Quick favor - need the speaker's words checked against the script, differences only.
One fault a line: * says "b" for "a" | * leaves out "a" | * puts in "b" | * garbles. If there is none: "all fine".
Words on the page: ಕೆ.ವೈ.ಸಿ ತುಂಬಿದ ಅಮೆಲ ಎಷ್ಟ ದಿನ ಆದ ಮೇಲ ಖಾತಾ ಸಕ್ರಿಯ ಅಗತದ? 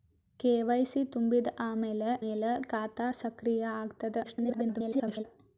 * leaves out "ಎಷ್ಟ ದಿನ ಆದ"
* garbles